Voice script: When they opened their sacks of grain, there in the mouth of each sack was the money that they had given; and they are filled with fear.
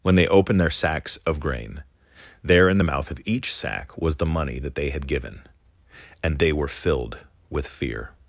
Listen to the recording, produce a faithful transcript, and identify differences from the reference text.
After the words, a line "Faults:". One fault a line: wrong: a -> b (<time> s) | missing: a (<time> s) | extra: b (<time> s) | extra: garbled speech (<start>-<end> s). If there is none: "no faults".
When they opened their sacks of grain, there in the mouth of each sack was the money that they had given; and they were filled with fear.
Faults:
wrong: are -> were (6.5 s)